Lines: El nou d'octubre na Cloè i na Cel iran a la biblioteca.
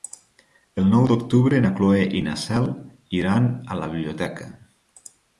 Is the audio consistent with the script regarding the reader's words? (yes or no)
yes